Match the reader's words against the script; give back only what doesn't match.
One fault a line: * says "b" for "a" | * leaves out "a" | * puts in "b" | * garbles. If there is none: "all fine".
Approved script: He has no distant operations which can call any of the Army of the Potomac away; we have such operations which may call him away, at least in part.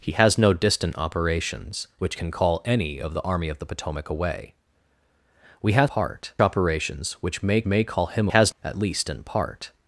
* says "part" for "such"
* puts in "may"
* says "has" for "away"